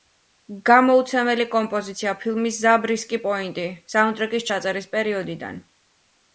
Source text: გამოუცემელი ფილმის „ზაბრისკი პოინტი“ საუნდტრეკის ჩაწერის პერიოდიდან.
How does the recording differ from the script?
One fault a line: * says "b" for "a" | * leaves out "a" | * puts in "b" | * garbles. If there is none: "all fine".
* puts in "კომპოზიცია"